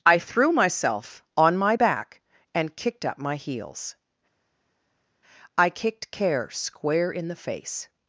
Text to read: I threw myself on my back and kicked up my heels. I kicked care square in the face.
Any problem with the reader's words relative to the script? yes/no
no